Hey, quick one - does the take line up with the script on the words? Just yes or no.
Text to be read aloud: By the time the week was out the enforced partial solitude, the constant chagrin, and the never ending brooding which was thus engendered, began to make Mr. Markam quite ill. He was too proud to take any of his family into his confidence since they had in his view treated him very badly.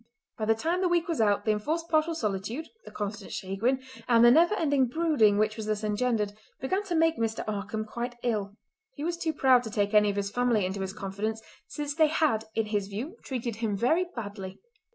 yes